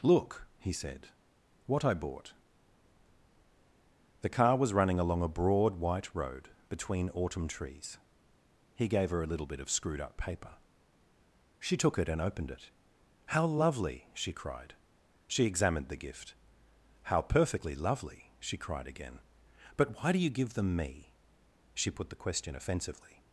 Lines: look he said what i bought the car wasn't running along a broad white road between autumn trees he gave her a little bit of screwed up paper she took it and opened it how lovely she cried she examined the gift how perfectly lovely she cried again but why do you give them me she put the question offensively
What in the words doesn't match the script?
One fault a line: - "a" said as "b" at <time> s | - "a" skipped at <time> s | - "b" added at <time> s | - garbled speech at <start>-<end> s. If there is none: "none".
- "wasn't" said as "was" at 4.6 s